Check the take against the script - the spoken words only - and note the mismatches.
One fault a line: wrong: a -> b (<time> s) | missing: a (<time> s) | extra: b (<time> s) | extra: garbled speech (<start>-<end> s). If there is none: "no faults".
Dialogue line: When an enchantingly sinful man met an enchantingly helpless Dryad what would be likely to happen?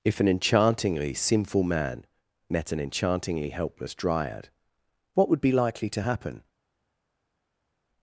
wrong: When -> If (0.0 s)